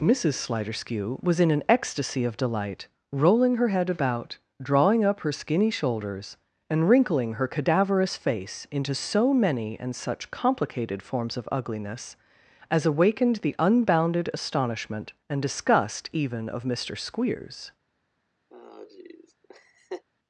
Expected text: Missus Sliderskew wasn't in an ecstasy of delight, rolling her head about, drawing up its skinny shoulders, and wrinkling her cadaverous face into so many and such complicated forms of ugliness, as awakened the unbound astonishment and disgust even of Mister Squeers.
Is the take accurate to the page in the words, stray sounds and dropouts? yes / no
no